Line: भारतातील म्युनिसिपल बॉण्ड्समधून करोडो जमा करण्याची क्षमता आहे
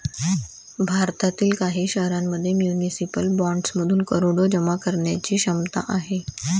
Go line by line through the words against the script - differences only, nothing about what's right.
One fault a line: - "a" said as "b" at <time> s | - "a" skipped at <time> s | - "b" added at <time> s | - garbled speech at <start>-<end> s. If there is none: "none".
- "काही शहरांमध्ये" added at 1.6 s